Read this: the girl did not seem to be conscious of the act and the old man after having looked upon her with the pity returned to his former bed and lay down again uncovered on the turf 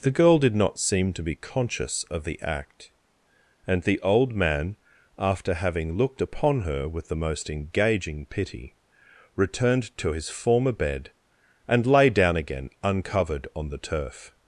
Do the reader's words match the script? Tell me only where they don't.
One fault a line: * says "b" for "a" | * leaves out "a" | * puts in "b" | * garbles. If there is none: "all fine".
* puts in "most engaging"